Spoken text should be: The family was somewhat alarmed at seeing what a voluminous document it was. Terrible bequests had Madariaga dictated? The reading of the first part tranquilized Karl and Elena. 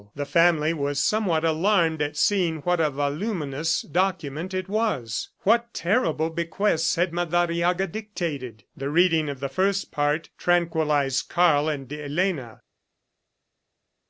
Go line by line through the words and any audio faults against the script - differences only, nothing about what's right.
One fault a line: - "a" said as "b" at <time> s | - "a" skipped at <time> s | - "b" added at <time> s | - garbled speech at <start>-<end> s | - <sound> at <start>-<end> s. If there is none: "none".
- "What" added at 5.4 s